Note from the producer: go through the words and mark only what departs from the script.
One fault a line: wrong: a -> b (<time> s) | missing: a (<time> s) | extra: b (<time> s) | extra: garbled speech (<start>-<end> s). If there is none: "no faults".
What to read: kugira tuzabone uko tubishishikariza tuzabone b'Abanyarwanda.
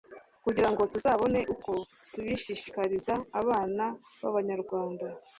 extra: ngo (0.7 s)
wrong: tuzabone -> abana (3.4 s)